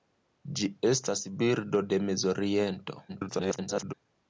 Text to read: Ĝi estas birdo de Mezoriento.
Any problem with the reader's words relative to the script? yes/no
yes